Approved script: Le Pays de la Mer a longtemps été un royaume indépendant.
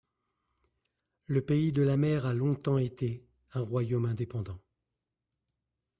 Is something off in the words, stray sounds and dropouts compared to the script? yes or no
no